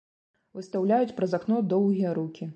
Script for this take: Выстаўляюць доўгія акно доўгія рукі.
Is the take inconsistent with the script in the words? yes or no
yes